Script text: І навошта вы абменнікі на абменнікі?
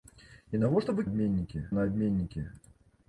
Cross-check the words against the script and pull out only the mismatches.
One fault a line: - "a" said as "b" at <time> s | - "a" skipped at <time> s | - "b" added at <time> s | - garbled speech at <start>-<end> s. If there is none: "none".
none